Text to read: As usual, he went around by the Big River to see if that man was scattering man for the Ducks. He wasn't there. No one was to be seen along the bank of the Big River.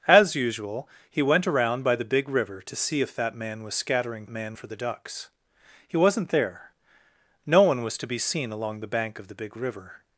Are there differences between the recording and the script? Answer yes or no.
no